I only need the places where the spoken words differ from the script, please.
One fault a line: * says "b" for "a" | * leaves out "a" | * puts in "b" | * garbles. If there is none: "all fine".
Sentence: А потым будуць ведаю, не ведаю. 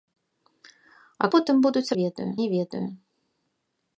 all fine